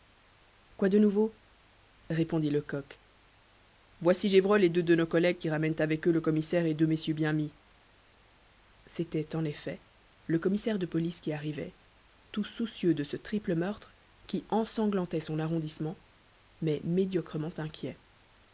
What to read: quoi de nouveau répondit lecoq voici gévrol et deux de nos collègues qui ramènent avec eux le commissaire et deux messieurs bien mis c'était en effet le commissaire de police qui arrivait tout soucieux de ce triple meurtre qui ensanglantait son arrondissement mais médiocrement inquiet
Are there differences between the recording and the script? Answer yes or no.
no